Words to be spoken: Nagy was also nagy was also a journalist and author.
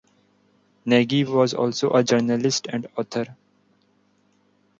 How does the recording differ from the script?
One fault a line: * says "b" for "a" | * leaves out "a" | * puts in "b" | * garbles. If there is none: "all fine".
* leaves out "nagy was also"